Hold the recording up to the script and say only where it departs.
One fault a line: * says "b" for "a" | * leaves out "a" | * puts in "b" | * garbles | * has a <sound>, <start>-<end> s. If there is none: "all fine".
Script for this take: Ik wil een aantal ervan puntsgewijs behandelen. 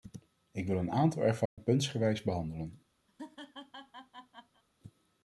* has a dropout, 1.5-1.6 s
* has a laugh, 3.1-4.6 s